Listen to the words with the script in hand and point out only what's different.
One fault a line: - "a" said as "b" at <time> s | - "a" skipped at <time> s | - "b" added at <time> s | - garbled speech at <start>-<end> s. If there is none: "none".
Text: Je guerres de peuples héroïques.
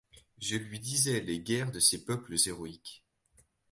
- "lui disais les" added at 0.6 s
- "ces" added at 1.8 s